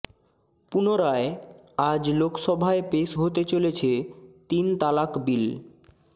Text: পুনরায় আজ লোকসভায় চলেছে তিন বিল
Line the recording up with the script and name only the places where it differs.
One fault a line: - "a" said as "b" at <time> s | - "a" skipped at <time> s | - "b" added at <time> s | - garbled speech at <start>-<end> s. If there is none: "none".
- "পেশ হতে" added at 2.9 s
- "তালাক" added at 4.8 s